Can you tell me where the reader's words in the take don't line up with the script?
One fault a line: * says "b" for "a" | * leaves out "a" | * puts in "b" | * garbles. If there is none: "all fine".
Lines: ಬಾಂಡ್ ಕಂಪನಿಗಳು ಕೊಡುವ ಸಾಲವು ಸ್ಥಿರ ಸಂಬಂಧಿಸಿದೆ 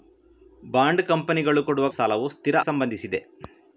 all fine